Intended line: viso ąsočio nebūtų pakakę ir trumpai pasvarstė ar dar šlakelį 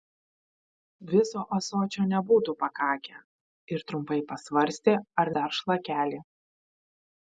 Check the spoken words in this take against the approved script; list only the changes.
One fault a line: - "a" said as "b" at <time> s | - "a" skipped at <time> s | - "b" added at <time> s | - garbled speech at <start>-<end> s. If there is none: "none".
none